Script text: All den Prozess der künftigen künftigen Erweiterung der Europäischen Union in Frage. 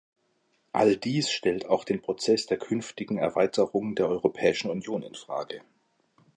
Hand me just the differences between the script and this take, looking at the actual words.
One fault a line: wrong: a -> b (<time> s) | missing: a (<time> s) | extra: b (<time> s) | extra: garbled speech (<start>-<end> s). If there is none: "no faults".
extra: dies stellt auch (1.0 s)
missing: künftigen (3.2 s)